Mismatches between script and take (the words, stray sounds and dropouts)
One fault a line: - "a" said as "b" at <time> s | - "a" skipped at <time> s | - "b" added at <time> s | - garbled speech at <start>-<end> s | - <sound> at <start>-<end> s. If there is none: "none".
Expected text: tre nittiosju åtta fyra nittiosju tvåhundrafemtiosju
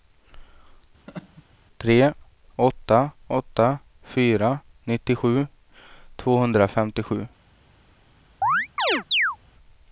- laugh at 1.1-1.4 s
- "nittiosju" said as "åtta" at 2.6 s
- chirp at 8.4-9.4 s